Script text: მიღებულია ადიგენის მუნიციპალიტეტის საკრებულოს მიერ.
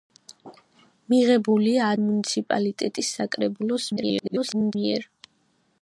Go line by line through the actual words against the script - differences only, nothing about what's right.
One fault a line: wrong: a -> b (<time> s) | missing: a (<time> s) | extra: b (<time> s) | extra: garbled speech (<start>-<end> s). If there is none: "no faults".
missing: ადიგენის (1.9 s)
extra: garbled speech (4.0-4.8 s)